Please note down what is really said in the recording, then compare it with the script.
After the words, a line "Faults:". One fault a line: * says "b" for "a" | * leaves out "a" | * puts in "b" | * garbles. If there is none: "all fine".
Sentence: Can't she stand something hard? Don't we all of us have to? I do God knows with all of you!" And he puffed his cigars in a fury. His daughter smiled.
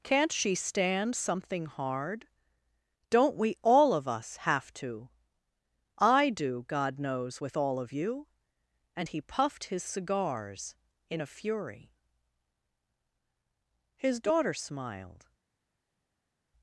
Can't she stand something hard? Don't we all of us have to? I do God knows with all of you!" And he puffed his cigars in a fury. His daughter smiled.
Faults:
all fine